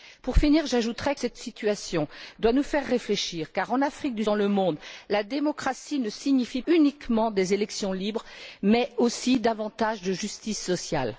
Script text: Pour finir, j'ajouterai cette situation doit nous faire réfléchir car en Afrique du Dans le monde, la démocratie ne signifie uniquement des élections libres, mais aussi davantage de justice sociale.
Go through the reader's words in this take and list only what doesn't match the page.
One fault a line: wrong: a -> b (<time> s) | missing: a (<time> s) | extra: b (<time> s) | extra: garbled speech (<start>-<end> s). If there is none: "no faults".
no faults